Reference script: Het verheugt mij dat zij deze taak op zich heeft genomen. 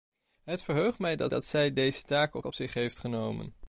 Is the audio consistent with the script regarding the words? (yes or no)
no